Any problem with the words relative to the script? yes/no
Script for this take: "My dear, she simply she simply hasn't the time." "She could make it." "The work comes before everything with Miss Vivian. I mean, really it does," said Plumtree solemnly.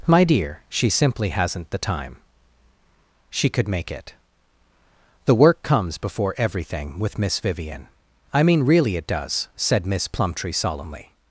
yes